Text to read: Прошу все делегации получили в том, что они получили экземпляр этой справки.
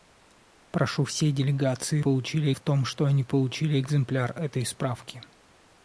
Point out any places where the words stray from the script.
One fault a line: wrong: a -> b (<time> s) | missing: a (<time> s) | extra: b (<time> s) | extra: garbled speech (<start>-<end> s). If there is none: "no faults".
no faults